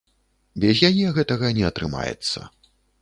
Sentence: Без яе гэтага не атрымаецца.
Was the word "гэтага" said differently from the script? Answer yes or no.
no